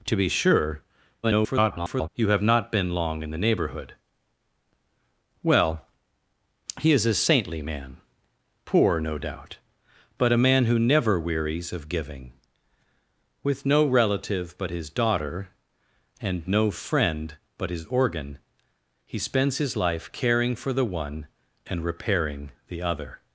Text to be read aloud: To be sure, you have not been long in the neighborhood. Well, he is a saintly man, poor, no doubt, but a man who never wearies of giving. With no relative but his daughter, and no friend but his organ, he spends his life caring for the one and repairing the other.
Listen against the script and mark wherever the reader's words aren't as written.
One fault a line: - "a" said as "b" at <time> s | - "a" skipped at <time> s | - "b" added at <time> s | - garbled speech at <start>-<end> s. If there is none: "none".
- garbled speech at 1.2-2.1 s